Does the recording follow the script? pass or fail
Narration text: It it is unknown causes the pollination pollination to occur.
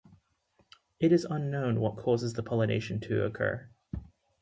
fail